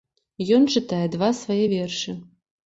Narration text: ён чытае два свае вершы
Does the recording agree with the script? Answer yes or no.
yes